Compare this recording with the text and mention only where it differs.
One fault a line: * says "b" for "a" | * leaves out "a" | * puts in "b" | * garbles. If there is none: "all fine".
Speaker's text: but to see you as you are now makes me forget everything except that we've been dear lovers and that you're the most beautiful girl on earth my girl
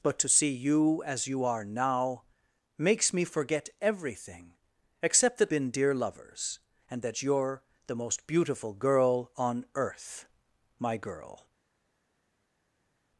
* leaves out "we've"